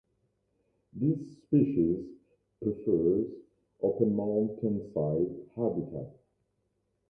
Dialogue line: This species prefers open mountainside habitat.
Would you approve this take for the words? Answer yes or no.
yes